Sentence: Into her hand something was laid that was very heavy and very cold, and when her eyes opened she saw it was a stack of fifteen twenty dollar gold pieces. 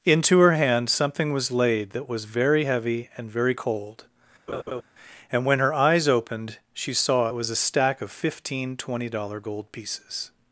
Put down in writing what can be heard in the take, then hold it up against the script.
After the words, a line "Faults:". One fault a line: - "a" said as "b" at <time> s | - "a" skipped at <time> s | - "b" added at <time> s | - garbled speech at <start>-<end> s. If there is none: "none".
Into her hand something was laid that was very heavy and very cold, and when her eyes opened she saw it was a stack of fifteen twenty dollar gold pieces.
Faults:
none